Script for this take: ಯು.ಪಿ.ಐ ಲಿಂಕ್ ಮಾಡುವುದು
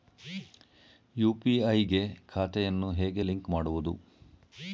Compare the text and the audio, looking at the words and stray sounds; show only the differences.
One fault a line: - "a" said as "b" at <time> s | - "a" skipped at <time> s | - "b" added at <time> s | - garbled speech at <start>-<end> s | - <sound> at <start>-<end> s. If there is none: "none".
- "ಗೆ ಖಾತೆಯನ್ನು ಹೇಗೆ" added at 1.8 s